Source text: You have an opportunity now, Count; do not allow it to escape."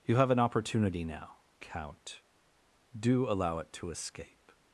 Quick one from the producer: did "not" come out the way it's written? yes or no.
no